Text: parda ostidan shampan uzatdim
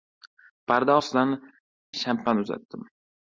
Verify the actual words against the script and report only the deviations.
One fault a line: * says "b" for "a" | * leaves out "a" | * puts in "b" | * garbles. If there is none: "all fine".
all fine